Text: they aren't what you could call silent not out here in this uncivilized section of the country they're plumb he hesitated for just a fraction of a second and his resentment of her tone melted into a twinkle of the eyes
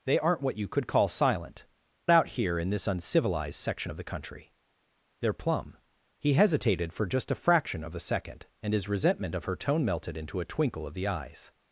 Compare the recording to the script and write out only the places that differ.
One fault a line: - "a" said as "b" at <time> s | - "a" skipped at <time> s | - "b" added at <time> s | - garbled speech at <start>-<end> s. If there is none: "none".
- "not" skipped at 1.6 s